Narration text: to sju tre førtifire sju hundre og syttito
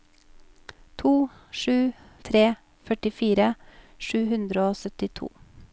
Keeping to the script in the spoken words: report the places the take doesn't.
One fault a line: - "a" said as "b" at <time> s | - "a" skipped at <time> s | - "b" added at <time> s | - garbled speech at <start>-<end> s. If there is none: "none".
none